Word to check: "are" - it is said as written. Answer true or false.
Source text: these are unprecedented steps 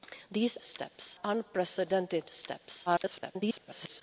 false